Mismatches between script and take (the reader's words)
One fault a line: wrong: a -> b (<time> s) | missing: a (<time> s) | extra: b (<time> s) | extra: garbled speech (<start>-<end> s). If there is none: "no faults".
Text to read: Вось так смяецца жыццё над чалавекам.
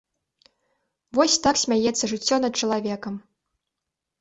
no faults